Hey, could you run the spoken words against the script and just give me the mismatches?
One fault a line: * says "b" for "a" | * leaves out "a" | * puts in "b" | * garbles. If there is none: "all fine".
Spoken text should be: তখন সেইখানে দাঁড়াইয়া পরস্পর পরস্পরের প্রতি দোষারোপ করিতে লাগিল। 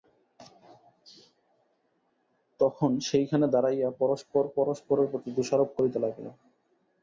all fine